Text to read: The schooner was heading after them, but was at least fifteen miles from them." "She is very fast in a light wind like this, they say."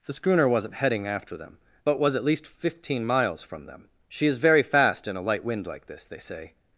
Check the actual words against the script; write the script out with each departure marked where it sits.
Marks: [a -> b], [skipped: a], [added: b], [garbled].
The schooner [was -> wasn't] heading after them, but was at least fifteen miles from them." "She is very fast in a light wind like this, they say."